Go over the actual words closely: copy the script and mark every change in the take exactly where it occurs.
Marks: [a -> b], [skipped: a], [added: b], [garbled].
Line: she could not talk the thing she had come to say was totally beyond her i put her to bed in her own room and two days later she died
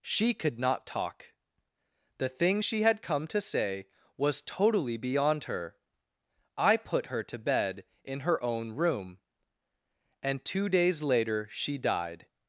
she could not talk the thing she had come to say was totally beyond her i put her to bed in her own room and two days later she died